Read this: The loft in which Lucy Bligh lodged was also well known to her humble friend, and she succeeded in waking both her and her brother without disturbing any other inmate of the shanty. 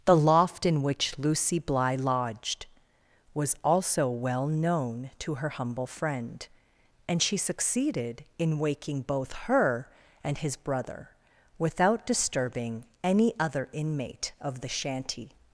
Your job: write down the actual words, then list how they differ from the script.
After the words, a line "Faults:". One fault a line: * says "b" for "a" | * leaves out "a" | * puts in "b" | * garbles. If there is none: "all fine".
The loft in which Lucy Bligh lodged was also well known to her humble friend, and she succeeded in waking both her and his brother without disturbing any other inmate of the shanty.
Faults:
* says "his" for "her"